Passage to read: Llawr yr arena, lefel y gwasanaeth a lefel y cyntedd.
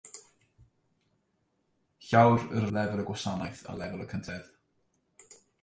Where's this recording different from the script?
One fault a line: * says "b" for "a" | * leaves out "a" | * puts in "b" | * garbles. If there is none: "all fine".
* leaves out "arena"